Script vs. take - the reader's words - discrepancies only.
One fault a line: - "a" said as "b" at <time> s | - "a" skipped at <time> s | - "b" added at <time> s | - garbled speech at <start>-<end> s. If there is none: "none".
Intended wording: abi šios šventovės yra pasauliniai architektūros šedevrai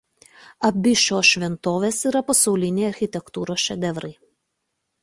none